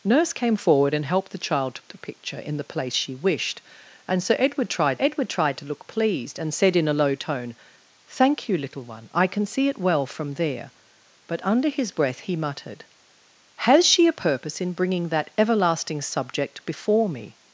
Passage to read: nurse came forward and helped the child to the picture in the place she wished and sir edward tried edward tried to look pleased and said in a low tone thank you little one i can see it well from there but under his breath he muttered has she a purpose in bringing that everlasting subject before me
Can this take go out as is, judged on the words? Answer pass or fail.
pass